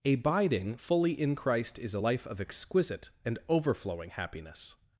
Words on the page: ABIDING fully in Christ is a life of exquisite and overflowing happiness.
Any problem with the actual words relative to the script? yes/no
no